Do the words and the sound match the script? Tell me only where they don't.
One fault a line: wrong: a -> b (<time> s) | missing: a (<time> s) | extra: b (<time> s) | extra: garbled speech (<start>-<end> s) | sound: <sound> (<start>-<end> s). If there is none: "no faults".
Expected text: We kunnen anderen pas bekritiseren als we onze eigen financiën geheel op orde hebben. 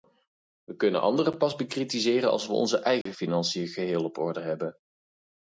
sound: dropout (3.0-3.1 s)